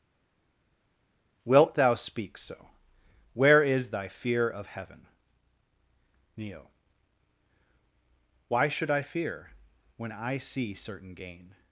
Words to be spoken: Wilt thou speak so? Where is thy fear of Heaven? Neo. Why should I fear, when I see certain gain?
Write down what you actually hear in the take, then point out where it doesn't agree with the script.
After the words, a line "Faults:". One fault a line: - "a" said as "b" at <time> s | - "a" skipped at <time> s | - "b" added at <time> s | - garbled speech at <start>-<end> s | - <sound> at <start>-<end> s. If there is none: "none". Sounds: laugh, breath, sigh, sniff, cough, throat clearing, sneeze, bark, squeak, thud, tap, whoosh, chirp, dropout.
Wilt thou speak so? Where is thy fear of Heaven? Neo. Why should I fear, when I see certain gain?
Faults:
none